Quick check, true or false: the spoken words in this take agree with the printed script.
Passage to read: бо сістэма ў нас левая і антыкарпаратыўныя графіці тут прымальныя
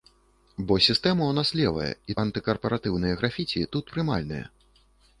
true